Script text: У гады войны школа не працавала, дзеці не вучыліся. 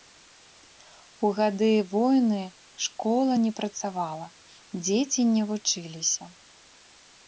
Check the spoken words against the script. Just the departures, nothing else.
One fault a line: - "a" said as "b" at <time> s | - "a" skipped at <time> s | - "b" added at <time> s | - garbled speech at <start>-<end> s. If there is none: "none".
none